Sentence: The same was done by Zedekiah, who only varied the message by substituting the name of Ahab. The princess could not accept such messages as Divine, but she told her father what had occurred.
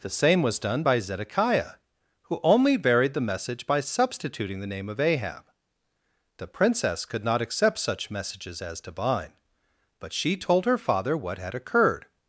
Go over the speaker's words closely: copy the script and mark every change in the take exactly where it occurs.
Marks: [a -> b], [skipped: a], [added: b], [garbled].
The same was done by Zedekiah, who only varied the message by substituting the name of Ahab. The princess could not accept such messages as Divine, but she told her father what had occurred.